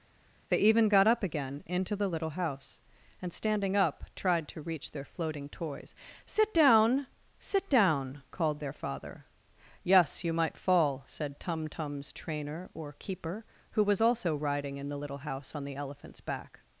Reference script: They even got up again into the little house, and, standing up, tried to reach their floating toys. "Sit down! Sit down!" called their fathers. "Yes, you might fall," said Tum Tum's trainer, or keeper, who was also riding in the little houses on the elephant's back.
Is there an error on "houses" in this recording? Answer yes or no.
yes